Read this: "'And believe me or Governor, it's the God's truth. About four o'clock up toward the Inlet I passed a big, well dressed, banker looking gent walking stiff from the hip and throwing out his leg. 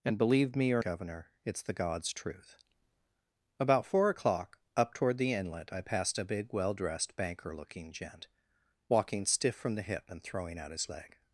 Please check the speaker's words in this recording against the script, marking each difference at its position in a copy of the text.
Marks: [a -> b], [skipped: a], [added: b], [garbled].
"'And believe me or Governor, it's the God's truth. About four o'clock up toward the Inlet I passed a big, well dressed, banker looking gent walking stiff from the hip and throwing out his leg.